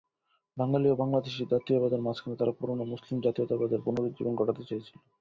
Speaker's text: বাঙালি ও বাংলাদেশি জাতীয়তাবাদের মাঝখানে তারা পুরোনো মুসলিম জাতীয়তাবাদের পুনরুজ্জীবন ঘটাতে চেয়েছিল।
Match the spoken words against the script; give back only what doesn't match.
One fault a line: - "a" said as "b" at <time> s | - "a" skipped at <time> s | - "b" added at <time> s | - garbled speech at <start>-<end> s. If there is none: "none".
none